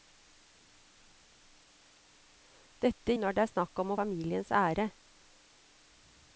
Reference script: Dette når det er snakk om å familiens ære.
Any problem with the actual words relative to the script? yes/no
no